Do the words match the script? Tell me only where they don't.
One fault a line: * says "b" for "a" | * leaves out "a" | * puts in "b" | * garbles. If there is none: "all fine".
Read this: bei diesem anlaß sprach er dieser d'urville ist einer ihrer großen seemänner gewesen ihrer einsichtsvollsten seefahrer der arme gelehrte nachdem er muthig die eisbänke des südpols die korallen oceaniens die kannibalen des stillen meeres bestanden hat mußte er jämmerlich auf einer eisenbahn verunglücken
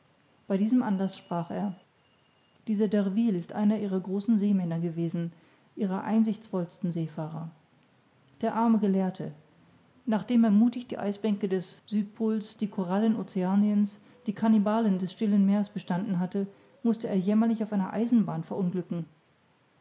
* says "hatte" for "hat"